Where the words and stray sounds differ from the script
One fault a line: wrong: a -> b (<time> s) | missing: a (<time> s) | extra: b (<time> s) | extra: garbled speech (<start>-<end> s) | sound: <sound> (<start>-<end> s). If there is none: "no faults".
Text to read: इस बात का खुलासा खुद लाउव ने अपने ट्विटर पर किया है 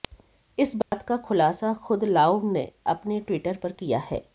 sound: dropout (0.8-0.9 s)